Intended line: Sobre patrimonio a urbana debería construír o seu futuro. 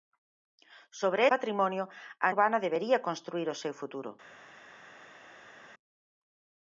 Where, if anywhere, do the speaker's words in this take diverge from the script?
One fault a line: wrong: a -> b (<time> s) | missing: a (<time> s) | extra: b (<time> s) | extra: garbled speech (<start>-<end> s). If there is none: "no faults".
no faults